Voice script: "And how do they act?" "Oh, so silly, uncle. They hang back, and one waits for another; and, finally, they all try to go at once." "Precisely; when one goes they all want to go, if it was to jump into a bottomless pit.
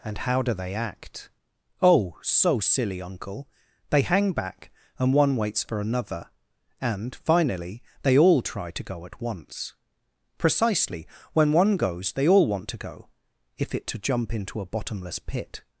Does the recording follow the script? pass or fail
fail